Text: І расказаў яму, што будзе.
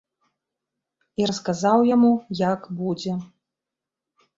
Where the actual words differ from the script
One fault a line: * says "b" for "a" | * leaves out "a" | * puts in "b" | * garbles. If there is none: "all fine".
* says "як" for "што"